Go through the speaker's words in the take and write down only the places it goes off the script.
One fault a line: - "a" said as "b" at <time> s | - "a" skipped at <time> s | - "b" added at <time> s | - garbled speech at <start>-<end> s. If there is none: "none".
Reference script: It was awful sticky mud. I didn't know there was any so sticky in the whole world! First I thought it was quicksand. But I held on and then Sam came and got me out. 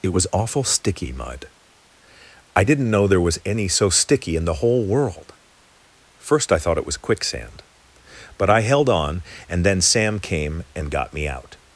none